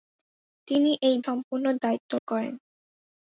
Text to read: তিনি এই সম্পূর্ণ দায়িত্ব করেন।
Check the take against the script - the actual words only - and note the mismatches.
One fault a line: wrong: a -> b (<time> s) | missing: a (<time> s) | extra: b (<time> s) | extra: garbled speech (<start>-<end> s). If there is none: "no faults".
no faults